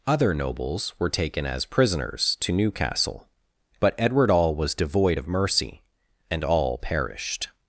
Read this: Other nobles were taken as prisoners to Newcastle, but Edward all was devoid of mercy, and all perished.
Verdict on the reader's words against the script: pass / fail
pass